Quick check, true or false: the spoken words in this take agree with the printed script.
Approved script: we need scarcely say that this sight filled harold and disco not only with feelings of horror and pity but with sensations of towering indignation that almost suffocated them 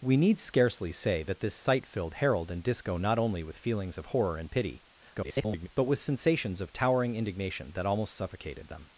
false